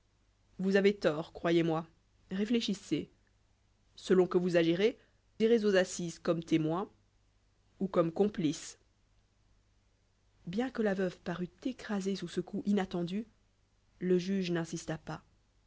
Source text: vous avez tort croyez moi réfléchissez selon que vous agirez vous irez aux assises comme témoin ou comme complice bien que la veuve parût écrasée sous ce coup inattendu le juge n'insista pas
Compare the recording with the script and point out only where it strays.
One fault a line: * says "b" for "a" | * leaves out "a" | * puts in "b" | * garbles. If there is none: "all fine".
* leaves out "vous"